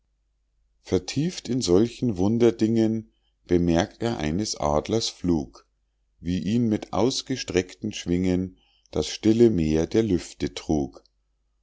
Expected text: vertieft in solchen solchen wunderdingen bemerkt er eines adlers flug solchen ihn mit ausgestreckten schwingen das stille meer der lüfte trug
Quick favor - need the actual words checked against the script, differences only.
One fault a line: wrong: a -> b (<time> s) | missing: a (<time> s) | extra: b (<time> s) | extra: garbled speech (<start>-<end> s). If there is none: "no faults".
missing: solchen (2.2 s)
wrong: solchen -> wie (6.2 s)